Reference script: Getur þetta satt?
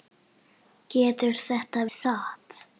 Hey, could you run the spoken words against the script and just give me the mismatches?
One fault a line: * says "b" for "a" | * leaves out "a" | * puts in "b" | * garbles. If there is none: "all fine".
all fine